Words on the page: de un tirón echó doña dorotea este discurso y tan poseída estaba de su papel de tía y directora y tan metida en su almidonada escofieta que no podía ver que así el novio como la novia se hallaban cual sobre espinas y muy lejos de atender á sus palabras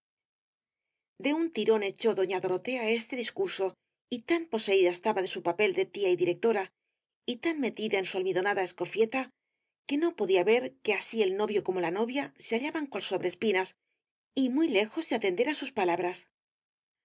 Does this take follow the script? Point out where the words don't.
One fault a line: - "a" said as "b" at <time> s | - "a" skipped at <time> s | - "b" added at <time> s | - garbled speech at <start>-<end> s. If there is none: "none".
none